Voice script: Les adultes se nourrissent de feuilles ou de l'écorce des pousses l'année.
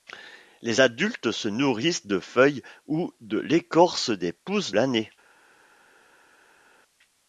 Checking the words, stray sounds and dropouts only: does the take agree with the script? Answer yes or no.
yes